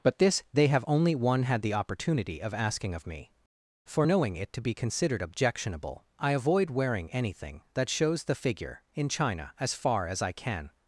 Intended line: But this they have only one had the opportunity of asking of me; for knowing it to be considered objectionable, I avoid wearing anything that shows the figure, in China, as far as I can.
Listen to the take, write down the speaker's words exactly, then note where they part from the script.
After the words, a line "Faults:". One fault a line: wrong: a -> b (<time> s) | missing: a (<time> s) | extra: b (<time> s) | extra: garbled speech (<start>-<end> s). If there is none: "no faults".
But this they have only one had the opportunity of asking of me; for knowing it to be considered objectionable, I avoid wearing anything that shows the figure, in China, as far as I can.
Faults:
no faults